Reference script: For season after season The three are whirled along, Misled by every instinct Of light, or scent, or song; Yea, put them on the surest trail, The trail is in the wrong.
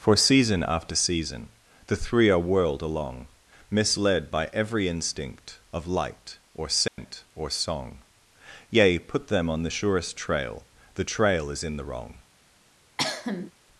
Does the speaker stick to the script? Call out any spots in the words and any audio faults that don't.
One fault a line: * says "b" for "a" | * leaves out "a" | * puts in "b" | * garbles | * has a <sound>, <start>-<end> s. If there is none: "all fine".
* has a dropout, 6.9-7.0 s
* has a cough, 13.0-13.5 s